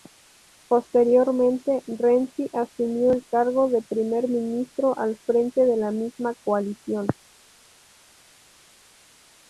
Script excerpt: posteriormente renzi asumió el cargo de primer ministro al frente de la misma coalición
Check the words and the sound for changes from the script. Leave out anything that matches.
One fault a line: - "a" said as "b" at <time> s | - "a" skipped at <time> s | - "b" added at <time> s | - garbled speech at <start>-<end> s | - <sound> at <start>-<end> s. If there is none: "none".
none